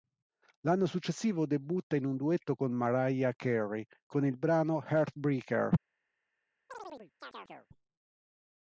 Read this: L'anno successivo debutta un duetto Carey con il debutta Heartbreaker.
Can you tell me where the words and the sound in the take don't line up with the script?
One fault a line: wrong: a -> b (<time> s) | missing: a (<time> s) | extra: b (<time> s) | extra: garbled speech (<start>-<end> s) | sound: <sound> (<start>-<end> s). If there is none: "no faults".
extra: in (1.9 s)
extra: con Mariah (2.5 s)
wrong: debutta -> brano (4.3 s)
sound: chirp (6.7-7.7 s)